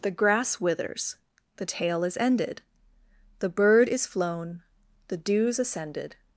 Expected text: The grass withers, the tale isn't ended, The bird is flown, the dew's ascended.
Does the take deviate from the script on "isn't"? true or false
true